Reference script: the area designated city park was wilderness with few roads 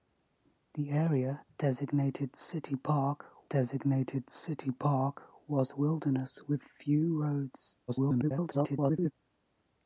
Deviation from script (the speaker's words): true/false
true